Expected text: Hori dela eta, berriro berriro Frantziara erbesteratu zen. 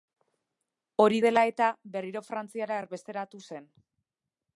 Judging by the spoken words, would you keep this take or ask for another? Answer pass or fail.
fail